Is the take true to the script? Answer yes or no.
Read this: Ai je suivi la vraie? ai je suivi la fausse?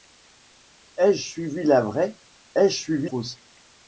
no